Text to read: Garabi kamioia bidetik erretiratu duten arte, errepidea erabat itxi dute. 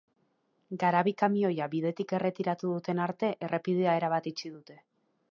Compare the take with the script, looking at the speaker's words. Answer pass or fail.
pass